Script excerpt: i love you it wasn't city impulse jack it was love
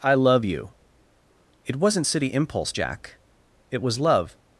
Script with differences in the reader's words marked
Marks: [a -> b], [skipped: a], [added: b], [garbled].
i love you it wasn't city impulse jack it was love